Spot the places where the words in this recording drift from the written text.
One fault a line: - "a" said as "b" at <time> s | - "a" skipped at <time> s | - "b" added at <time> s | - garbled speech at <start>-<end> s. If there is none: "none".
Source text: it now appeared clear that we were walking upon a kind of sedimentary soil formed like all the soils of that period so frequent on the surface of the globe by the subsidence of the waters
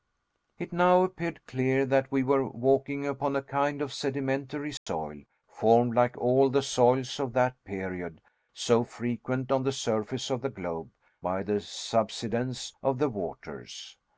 none